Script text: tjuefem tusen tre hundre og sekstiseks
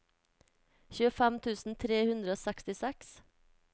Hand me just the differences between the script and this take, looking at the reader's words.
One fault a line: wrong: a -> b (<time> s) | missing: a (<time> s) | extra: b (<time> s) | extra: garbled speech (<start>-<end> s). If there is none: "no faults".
no faults